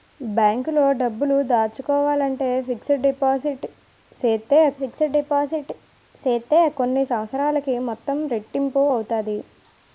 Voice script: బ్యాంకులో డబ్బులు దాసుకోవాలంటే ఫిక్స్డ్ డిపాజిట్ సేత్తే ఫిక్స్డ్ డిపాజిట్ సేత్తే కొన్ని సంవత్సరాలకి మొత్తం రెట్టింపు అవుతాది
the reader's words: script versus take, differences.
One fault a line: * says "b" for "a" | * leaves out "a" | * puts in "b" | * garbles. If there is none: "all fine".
all fine